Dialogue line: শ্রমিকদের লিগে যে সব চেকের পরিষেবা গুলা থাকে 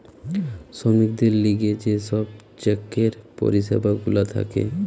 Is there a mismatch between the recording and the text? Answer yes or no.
no